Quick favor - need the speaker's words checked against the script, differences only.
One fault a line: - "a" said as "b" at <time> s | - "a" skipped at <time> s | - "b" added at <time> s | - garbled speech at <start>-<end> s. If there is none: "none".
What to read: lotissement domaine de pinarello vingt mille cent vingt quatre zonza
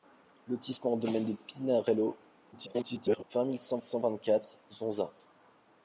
- garbled speech at 2.5-3.2 s
- "cent" added at 3.8 s